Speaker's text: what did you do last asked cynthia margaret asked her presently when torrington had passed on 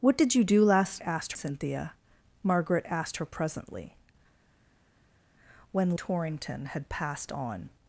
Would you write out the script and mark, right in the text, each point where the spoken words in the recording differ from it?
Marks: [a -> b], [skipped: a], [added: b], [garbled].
what did you do last asked cynthia margaret asked her presently when torrington had passed on